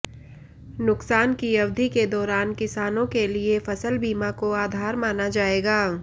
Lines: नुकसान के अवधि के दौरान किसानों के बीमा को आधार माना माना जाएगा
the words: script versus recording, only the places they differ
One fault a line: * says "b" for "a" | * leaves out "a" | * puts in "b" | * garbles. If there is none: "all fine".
* says "की" for "के"
* puts in "लिए फसल"
* leaves out "माना"